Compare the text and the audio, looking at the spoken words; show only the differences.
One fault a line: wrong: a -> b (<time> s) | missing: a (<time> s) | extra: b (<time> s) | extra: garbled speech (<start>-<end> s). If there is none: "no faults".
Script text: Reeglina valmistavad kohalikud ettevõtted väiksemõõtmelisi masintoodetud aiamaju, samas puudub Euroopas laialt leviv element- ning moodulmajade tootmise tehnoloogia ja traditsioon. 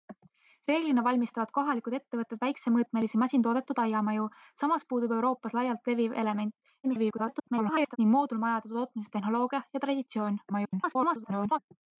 extra: garbled speech (6.8-8.0 s)
extra: garbled speech (10.5-11.6 s)